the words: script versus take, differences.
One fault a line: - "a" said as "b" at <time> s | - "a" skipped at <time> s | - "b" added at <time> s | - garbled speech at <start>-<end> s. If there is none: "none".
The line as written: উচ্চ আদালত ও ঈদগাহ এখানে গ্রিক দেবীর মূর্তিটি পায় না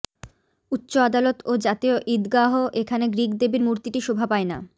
- "জাতীয়" added at 1.6 s
- "শোভা" added at 4.0 s